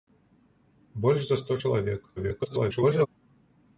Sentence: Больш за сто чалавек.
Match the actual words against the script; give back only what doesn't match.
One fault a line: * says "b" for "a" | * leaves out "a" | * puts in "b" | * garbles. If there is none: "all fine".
* garbles